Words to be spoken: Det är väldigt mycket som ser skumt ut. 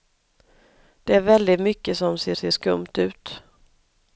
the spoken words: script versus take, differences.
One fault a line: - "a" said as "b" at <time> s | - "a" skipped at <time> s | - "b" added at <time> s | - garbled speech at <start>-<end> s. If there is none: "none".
- "ser" added at 2.3 s